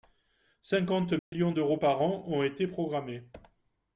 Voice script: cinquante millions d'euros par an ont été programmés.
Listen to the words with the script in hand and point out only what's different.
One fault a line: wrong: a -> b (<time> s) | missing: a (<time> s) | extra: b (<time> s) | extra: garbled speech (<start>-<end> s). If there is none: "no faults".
no faults